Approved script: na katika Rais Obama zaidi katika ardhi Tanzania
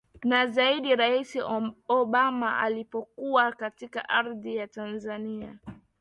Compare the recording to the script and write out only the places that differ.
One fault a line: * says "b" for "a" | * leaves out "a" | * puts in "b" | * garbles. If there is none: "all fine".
* says "zaidi" for "katika"
* says "alipokuwa" for "zaidi"
* puts in "ya"